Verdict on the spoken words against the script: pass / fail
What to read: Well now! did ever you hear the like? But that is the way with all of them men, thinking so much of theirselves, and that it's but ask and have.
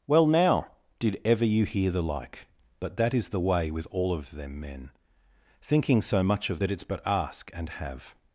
fail